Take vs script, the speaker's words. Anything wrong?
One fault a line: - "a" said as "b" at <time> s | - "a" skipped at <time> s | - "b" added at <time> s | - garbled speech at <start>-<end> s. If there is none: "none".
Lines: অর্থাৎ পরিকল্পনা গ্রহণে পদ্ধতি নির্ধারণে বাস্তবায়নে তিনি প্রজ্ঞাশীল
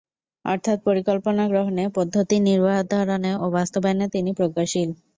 - "ও" added at 3.3 s